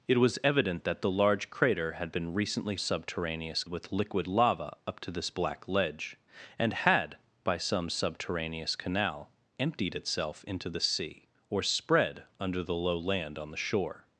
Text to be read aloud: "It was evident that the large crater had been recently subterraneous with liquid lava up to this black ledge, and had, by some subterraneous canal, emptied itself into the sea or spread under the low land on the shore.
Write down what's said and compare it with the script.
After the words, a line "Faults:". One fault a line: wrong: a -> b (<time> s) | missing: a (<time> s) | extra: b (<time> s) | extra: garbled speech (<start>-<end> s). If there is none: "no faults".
"It was evident that the large crater had been recently subterraneous with liquid lava up to this black ledge, and had, by some subterraneous canal, emptied itself into the sea or spread under the low land on the shore.
Faults:
no faults